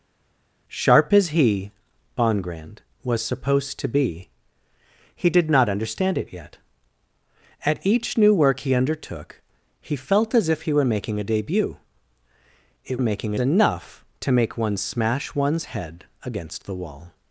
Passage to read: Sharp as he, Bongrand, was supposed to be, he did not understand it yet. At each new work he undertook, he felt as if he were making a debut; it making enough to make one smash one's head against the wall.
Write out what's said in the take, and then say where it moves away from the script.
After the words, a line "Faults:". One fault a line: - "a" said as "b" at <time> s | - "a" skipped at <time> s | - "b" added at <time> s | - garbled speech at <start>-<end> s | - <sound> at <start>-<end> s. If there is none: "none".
Sharp as he, Bongrand, was supposed to be, he did not understand it yet. At each new work he undertook, he felt as if he were making a debut; it making enough to make one smash one's head against the wall.
Faults:
none